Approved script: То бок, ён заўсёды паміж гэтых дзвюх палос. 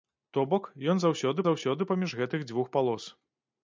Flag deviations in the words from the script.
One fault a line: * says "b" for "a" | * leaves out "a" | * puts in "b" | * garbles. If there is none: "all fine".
* puts in "заўсёды"